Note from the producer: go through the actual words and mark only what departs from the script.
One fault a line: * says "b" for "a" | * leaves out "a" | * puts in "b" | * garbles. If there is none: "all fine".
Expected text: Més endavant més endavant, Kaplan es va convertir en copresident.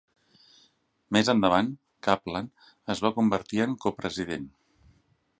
* leaves out "més endavant"